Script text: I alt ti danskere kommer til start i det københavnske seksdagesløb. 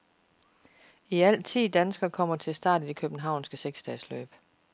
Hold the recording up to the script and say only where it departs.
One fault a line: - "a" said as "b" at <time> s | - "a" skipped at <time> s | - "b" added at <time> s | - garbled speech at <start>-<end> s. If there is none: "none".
none